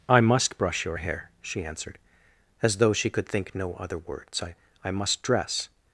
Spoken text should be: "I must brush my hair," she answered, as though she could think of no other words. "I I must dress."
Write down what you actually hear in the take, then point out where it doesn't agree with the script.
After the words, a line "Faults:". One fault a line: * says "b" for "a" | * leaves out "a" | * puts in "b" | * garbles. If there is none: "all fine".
"I must brush your hair," she answered, as though she could think no other words. "I I must dress."
Faults:
* says "your" for "my"
* leaves out "of"